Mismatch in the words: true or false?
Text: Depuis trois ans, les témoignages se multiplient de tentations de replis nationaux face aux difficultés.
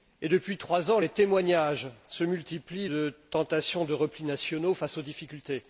false